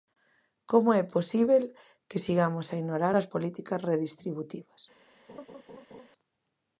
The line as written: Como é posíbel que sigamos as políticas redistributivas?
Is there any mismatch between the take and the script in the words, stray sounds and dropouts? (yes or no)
yes